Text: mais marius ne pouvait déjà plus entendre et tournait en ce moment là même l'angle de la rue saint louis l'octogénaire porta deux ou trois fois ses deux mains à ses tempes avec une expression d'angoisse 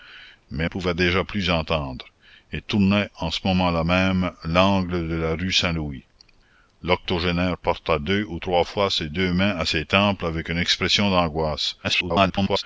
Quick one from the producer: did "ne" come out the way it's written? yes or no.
no